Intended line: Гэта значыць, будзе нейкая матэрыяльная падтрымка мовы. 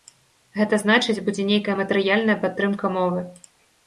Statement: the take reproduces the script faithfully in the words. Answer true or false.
true